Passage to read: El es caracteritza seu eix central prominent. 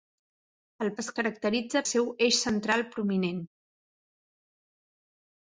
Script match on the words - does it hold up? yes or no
yes